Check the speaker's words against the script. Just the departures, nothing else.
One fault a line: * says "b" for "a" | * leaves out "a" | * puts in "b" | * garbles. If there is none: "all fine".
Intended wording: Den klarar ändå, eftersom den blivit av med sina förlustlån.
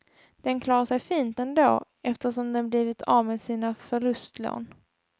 * puts in "sig fint"